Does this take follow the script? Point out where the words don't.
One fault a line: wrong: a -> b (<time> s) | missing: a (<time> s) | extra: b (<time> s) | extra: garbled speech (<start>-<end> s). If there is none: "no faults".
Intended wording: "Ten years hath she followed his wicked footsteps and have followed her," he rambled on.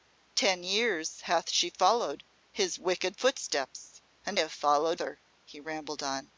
no faults